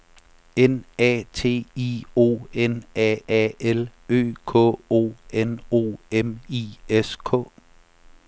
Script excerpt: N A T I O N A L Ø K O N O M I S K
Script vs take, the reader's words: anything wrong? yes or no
yes